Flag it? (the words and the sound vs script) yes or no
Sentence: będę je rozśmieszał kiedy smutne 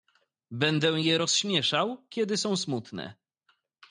yes